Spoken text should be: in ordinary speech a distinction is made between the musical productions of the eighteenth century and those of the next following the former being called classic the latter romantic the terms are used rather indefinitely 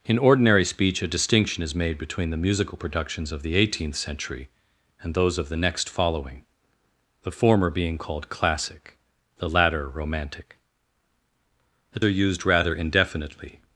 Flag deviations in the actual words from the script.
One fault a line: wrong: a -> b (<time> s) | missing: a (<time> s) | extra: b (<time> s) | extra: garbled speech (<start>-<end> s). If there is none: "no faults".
missing: terms (12.0 s)